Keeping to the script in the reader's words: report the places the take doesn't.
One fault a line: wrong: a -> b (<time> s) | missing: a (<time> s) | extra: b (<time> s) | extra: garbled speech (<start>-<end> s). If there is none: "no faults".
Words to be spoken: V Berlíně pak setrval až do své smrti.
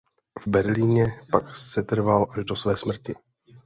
no faults